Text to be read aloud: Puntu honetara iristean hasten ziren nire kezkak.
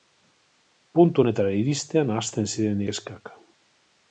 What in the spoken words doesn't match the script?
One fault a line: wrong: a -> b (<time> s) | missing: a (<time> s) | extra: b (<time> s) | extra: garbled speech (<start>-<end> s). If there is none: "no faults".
missing: nire (2.8 s)